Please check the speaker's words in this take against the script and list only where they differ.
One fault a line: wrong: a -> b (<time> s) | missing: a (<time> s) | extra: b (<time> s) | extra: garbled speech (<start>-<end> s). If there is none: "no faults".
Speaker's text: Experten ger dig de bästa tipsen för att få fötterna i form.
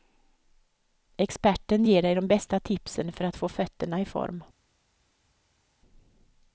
no faults